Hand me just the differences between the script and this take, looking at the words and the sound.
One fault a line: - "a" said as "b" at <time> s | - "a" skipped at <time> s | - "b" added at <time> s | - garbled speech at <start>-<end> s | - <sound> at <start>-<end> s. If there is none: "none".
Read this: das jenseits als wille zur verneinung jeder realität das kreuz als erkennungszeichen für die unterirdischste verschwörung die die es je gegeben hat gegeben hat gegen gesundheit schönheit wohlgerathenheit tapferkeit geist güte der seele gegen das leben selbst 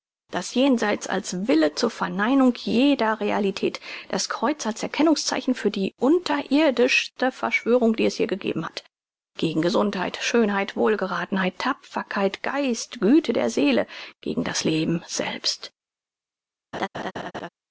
- "die" skipped at 8.1 s
- "gegeben hat" skipped at 8.8 s
- laugh at 16.7-17.5 s